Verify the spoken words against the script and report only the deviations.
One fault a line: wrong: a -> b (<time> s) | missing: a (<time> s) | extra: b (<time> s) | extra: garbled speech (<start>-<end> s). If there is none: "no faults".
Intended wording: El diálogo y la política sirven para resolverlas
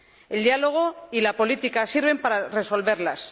no faults